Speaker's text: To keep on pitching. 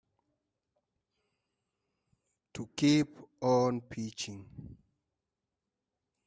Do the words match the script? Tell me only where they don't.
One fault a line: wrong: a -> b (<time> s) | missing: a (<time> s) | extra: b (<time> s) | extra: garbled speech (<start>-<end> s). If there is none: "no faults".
no faults